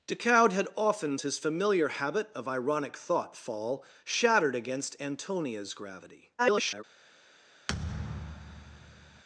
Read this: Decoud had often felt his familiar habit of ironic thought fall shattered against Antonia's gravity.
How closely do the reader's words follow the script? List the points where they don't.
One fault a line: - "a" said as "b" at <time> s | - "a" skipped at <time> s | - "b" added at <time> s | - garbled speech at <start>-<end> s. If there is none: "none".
- "felt" skipped at 1.2 s
- garbled speech at 6.4-6.8 s